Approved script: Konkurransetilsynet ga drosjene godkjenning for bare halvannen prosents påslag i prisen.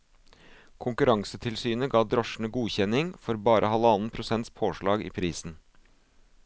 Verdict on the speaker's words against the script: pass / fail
pass